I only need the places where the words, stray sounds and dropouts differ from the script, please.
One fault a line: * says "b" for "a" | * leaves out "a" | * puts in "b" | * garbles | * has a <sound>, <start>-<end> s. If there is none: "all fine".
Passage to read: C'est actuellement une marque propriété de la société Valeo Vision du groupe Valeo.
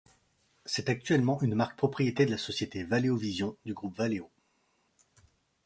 all fine